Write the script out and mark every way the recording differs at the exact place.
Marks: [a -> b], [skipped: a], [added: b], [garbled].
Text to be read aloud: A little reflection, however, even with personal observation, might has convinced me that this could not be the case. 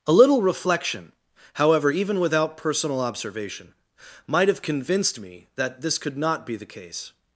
A little reflection, however, even [with -> without] personal observation, might [has -> have] convinced me that this could not be the case.